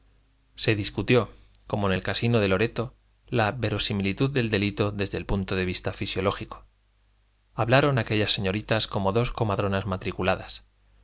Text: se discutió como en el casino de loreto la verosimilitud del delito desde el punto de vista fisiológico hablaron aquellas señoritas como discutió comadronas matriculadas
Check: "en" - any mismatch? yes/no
no